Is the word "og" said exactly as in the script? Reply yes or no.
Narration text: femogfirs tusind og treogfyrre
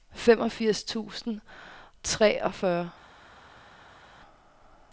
no